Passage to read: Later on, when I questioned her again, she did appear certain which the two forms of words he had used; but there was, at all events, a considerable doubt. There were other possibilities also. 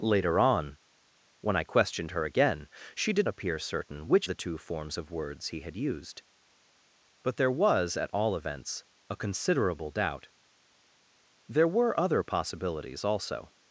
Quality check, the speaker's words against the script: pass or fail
pass